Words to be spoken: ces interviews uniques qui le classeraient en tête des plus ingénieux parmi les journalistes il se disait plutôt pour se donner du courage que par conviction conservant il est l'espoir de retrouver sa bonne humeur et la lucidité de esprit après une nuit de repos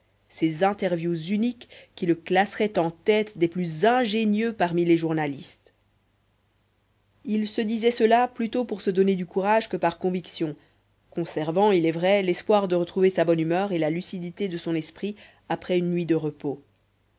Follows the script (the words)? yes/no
no